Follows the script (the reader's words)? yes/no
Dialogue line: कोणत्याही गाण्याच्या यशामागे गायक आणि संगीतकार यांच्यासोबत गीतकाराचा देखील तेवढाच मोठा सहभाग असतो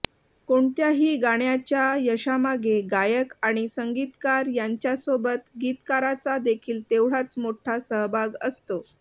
yes